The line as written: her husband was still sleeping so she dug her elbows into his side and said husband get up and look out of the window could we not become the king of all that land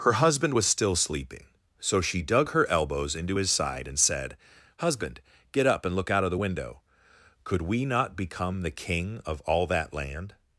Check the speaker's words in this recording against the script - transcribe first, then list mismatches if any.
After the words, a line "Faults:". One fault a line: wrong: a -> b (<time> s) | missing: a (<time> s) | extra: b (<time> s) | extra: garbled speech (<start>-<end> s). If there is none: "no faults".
her husband was still sleeping so she dug her elbows into his side and said husband get up and look out of the window could we not become the king of all that land
Faults:
no faults